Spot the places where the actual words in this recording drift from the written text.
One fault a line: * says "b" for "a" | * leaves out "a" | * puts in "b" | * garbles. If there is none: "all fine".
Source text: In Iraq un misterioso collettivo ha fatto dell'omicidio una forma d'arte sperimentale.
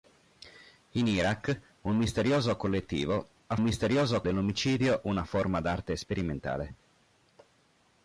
* says "misterioso" for "fatto"